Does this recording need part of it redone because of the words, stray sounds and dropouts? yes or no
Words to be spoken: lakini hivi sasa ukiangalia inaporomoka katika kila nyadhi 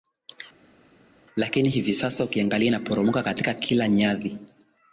no